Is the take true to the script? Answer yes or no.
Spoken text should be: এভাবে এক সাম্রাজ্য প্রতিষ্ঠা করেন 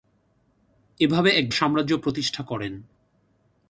yes